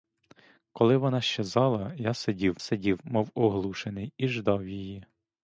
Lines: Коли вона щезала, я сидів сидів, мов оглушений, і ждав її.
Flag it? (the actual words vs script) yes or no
no